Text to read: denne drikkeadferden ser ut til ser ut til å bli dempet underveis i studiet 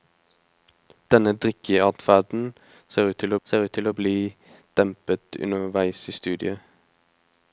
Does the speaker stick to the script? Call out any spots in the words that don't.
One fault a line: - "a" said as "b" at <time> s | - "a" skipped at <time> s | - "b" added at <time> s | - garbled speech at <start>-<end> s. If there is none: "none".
none